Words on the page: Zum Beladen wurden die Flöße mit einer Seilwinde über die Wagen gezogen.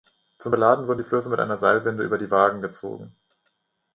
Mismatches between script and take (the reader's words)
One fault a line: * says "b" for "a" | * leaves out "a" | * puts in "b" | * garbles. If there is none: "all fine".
all fine